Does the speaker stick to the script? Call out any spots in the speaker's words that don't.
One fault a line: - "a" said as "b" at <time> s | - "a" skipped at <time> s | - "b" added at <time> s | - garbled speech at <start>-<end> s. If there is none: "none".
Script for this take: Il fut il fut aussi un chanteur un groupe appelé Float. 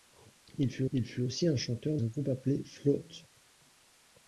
none